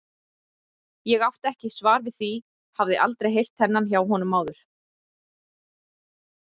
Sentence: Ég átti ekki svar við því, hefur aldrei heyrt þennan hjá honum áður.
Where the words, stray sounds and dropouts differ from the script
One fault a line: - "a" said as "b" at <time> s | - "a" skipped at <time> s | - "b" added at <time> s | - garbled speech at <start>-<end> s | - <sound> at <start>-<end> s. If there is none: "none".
- "hefur" said as "hafði" at 2.8 s